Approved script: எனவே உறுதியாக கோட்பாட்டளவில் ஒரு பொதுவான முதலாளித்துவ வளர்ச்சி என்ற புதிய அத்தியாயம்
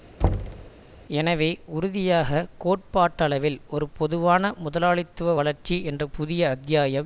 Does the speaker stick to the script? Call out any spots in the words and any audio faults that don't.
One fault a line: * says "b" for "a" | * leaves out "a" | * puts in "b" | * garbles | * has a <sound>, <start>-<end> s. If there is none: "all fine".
* has a thud, 0.2-0.7 s